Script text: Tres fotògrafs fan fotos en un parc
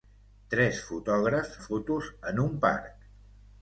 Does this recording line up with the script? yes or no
no